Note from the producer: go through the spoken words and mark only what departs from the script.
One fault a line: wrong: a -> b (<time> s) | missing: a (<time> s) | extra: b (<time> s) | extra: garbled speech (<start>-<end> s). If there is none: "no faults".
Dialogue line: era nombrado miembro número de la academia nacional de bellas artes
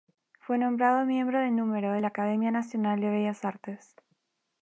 wrong: era -> fue (0.4 s)
extra: de (1.4 s)